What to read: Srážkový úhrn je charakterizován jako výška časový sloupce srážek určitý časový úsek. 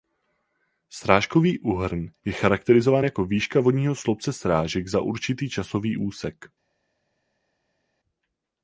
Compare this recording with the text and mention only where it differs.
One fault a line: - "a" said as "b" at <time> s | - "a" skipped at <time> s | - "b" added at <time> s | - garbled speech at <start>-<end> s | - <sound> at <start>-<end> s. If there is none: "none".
- "časový" said as "vodního" at 3.6 s
- "za" added at 4.9 s